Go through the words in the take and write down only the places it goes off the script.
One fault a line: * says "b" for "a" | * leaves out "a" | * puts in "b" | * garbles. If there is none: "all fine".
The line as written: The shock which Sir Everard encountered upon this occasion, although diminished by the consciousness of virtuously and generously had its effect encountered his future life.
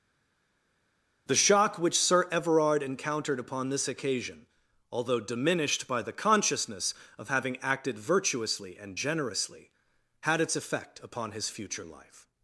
* puts in "having acted"
* says "upon" for "encountered"